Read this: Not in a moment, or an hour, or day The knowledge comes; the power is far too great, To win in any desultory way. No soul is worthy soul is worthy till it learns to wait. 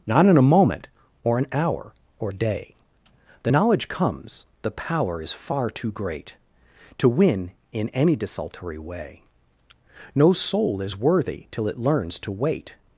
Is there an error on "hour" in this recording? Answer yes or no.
no